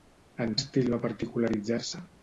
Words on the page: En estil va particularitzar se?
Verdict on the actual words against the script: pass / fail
pass